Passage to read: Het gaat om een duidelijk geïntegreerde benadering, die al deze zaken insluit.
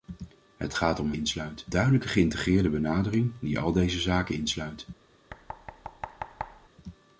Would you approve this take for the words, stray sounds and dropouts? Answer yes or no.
no